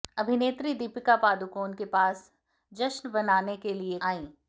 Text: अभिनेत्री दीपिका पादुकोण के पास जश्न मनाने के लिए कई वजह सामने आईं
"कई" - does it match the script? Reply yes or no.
no